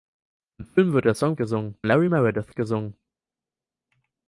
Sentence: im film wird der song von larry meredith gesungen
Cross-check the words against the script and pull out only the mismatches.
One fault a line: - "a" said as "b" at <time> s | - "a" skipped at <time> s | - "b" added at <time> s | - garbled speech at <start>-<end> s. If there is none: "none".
- "von" said as "gesungen" at 1.4 s